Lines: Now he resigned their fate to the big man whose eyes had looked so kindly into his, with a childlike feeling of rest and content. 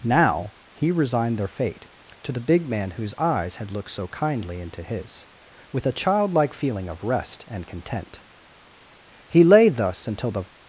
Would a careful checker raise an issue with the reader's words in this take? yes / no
yes